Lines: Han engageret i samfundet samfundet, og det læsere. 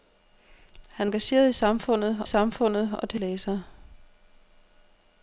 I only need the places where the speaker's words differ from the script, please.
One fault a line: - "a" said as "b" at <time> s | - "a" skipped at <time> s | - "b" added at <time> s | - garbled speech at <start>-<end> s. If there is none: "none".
none